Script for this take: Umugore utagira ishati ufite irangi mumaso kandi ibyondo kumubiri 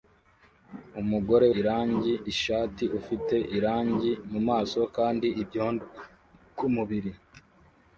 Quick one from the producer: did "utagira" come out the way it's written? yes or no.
no